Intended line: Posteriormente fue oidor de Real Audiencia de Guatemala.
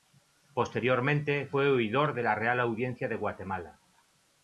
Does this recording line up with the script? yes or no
no